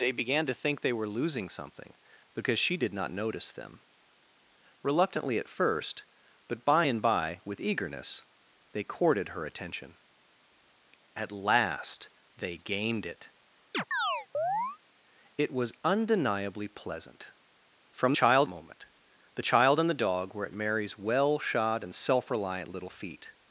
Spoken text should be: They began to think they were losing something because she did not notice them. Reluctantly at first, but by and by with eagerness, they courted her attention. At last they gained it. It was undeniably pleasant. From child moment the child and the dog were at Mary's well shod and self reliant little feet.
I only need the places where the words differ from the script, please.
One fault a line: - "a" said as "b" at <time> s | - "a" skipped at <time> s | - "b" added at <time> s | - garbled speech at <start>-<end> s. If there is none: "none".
none